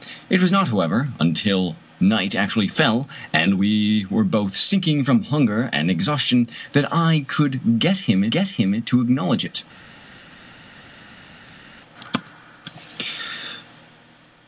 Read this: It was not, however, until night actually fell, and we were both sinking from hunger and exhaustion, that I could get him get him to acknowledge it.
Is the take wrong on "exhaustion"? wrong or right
right